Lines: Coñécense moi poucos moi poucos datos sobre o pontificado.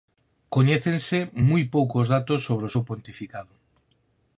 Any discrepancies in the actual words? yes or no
yes